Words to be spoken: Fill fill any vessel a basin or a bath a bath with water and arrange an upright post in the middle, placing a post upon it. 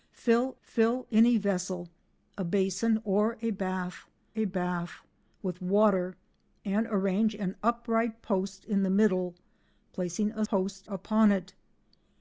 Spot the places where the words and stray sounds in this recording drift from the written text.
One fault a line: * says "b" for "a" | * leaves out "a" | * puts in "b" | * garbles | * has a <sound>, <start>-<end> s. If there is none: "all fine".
all fine